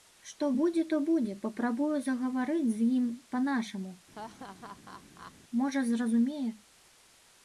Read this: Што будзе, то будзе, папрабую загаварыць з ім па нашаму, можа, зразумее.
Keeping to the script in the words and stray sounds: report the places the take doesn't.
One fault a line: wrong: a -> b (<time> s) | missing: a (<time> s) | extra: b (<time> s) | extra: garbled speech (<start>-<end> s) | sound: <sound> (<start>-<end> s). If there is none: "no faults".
sound: laugh (4.1-5.3 s)